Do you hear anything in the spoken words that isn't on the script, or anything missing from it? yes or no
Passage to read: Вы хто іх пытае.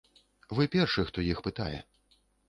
yes